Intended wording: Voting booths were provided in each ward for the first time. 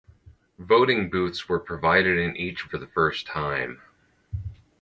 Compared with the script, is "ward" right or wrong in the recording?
wrong